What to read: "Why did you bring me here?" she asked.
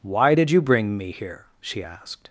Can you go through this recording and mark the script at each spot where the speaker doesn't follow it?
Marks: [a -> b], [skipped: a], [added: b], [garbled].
"Why did you bring me here?" she asked.